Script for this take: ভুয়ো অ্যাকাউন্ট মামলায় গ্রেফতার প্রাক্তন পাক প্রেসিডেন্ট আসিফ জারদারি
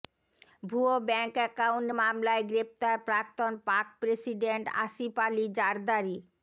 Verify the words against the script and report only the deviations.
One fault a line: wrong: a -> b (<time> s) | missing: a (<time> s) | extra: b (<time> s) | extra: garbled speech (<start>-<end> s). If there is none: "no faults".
extra: ব্যাঙ্ক (1.1 s)
extra: আলি (5.3 s)